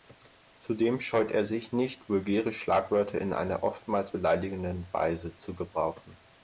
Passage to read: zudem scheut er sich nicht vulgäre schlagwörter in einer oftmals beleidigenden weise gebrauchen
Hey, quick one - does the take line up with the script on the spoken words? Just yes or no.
no